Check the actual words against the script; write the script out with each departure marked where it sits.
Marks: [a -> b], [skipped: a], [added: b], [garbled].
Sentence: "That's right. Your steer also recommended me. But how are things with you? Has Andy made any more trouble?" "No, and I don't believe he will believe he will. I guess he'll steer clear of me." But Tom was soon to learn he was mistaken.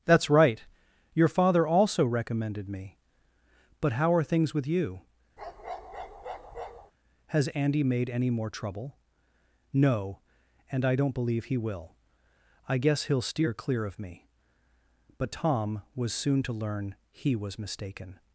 "That's right. Your [steer -> father] also recommended me. But how are things with you? Has Andy made any more trouble?" "No, and I don't believe he will [skipped: believe he will.] I guess he'll steer clear of me." But Tom was soon to learn he was mistaken.